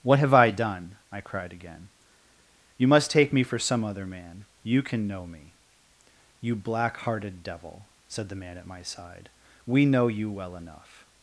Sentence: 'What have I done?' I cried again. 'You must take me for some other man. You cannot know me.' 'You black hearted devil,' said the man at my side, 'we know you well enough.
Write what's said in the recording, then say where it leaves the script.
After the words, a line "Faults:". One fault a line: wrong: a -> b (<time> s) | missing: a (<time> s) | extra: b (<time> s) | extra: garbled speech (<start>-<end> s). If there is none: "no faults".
'What have I done?' I cried again. 'You must take me for some other man. You can know me.' 'You black hearted devil,' said the man at my side, 'we know you well enough.
Faults:
wrong: cannot -> can (4.8 s)